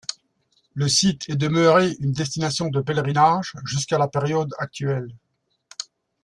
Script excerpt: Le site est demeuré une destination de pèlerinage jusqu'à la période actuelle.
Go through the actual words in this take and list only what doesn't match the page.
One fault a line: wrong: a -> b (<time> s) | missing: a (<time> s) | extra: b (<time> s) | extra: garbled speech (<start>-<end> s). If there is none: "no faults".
no faults